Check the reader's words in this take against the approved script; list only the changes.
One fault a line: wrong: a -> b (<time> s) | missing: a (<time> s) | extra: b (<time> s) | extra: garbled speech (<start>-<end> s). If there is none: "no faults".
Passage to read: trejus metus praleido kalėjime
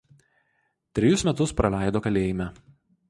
no faults